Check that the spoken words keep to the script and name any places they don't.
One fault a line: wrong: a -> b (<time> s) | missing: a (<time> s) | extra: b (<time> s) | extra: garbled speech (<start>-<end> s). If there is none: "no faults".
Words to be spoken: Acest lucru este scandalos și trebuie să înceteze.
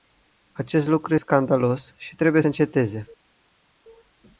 missing: este (1.1 s)
missing: să (2.4 s)